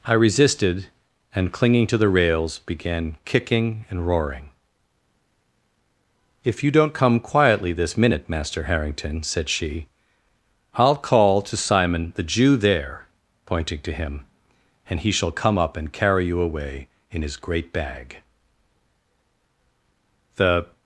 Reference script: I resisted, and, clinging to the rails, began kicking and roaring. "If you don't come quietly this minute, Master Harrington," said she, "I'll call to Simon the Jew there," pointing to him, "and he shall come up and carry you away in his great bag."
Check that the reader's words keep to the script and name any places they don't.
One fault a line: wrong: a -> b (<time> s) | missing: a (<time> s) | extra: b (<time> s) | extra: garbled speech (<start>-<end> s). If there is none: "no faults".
extra: The (20.4 s)